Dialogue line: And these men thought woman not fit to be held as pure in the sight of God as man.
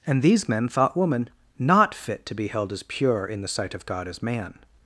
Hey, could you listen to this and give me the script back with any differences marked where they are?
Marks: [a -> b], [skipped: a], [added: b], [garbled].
And these men thought woman not fit to be held as pure in the sight of God as man.